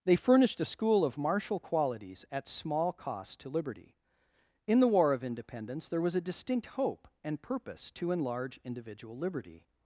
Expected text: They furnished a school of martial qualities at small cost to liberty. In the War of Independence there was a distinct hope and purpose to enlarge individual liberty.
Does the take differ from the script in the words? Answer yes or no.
no